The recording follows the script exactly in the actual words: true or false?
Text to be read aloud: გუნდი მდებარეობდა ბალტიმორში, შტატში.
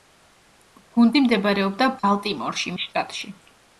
true